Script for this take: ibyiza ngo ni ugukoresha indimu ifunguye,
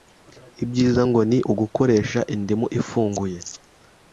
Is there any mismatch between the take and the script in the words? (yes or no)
no